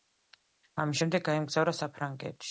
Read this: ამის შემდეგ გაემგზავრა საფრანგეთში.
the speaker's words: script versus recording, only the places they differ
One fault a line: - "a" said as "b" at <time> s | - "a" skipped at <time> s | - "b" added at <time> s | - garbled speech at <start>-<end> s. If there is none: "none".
none